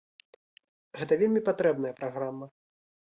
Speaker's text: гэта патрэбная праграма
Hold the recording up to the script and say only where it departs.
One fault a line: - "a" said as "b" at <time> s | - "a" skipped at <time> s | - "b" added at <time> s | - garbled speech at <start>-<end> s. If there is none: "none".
- "вельмі" added at 1.2 s